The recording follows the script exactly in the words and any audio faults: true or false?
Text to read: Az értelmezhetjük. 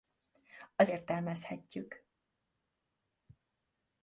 true